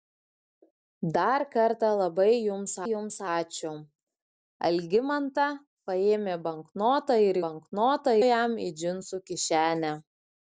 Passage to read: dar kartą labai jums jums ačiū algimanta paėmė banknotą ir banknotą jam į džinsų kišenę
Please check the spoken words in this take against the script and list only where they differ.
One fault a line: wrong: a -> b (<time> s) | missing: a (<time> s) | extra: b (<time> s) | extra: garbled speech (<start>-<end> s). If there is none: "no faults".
no faults